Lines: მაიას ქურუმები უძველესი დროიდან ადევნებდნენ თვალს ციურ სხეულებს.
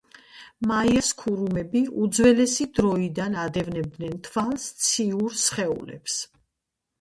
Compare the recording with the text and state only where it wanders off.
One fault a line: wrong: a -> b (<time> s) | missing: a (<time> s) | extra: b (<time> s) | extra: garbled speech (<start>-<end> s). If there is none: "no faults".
no faults